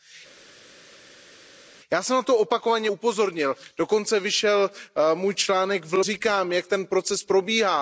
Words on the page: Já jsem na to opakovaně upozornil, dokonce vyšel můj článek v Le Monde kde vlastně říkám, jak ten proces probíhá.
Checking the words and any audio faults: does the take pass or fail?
fail